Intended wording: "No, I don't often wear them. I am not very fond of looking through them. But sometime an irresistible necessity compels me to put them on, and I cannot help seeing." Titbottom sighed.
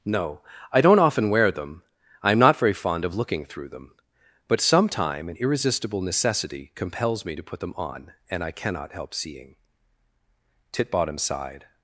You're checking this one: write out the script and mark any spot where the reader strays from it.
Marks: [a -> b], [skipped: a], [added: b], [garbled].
"No, I don't often wear them. I am not very fond of looking through them. But sometime an irresistible necessity compels me to put them on, and I cannot help seeing." Titbottom sighed.